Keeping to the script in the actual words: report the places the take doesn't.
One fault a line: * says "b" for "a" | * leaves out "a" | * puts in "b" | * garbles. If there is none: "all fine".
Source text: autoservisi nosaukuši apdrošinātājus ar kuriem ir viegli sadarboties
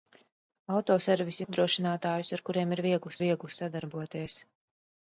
* leaves out "nosaukuši"
* puts in "viegli"